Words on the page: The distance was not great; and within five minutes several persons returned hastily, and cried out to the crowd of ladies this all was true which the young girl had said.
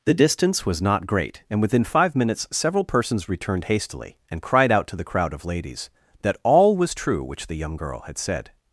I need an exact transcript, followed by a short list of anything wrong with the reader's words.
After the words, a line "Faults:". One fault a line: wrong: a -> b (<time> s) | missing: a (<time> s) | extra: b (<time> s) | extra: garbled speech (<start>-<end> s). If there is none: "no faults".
The distance was not great; and within five minutes several persons returned hastily, and cried out to the crowd of ladies that all was true which the young girl had said.
Faults:
wrong: this -> that (6.2 s)